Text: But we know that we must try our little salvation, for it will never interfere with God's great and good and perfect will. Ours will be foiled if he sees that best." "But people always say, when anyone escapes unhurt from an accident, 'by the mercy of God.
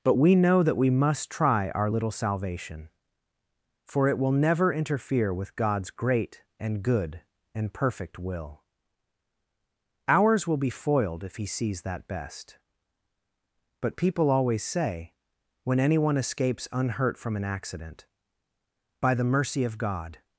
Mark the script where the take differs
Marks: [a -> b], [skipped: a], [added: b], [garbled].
But we know that we must try our little salvation, for it will never interfere with God's great and good and perfect will. Ours will be foiled if he sees that best." "But people always say, when anyone escapes unhurt from an accident, 'by the mercy of God.